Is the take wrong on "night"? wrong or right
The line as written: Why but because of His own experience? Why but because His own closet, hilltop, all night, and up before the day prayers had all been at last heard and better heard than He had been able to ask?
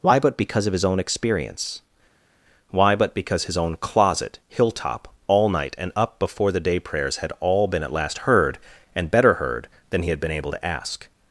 right